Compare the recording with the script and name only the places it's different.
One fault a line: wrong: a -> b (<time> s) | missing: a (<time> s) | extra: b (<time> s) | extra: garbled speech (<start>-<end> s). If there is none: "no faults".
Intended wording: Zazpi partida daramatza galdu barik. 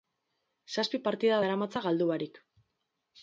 no faults